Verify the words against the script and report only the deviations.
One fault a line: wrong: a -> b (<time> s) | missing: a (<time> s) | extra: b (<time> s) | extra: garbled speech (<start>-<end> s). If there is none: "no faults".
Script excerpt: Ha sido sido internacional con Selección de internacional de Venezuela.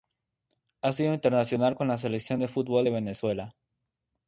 missing: sido (1.1 s)
extra: la (1.9 s)
wrong: internacional -> fútbol (2.5 s)